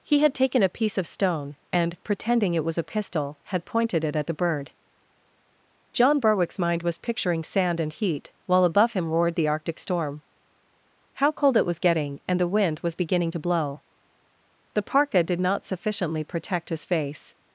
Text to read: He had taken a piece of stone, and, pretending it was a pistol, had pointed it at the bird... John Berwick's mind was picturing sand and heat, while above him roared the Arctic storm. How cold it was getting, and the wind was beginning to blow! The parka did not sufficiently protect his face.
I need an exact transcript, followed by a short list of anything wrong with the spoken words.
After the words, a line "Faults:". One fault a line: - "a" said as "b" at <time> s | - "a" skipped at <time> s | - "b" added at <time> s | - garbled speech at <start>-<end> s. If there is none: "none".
He had taken a piece of stone, and, pretending it was a pistol, had pointed it at the bird... John Berwick's mind was picturing sand and heat, while above him roared the Arctic storm. How cold it was getting, and the wind was beginning to blow! The parka did not sufficiently protect his face.
Faults:
none